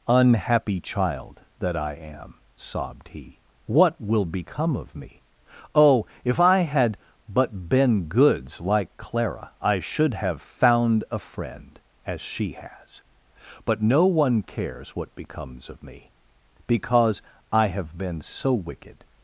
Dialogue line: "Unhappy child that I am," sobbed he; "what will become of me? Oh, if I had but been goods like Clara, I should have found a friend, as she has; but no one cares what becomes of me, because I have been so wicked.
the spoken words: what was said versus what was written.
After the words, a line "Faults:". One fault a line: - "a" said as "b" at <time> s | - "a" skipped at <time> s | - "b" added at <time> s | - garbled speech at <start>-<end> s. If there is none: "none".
"Unhappy child that I am," sobbed he; "what will become of me? Oh, if I had but been goods like Clara, I should have found a friend, as she has; but no one cares what becomes of me, because I have been so wicked.
Faults:
none